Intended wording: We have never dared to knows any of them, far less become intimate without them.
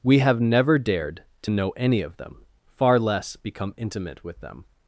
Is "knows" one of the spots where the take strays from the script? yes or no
yes